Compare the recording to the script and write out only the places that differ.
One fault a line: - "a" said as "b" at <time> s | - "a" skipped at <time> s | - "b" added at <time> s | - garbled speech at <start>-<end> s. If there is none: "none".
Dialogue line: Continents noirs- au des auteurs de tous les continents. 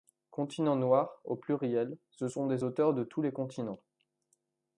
- "pluriel ce sont" added at 1.4 s